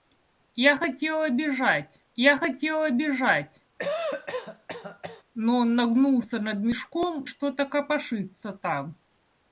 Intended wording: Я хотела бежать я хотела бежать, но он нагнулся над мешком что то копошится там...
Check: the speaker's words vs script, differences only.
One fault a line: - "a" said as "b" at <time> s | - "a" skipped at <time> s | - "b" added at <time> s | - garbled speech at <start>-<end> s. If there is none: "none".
none